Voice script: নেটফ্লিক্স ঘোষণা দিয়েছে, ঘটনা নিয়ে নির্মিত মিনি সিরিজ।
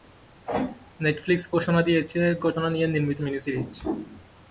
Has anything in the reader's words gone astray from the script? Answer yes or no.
no